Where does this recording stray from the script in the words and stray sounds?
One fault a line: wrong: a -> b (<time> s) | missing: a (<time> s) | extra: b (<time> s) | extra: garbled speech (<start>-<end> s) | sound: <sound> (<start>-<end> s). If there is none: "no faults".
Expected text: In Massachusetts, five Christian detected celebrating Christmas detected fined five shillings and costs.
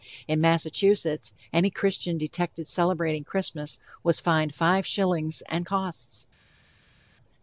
wrong: five -> any (1.5 s)
wrong: detected -> was (4.0 s)